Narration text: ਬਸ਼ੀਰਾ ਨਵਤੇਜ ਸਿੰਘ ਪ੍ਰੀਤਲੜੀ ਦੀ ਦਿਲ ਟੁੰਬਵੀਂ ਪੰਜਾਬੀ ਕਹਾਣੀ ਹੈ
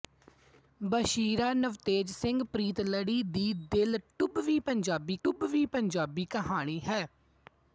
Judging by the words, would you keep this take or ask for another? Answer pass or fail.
fail